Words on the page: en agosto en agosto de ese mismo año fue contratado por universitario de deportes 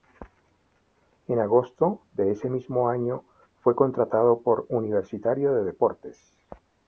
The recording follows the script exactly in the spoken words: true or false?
false